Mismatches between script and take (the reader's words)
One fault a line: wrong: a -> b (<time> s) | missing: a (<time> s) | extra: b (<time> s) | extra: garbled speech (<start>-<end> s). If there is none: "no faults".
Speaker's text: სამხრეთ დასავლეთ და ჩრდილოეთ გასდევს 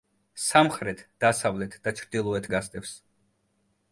no faults